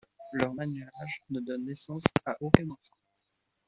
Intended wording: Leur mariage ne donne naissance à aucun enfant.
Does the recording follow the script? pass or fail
pass